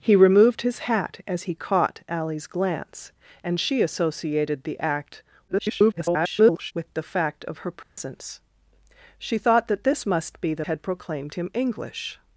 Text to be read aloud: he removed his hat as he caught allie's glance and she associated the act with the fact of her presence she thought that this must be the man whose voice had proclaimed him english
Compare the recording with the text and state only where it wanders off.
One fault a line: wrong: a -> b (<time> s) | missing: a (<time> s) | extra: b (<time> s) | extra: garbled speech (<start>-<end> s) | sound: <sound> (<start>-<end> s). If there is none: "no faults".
extra: garbled speech (5.5-6.7 s)
sound: dropout (7.8-8.0 s)
missing: man whose voice (10.7 s)